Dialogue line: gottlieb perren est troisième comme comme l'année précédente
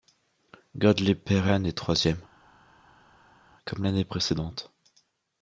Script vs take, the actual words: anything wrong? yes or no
yes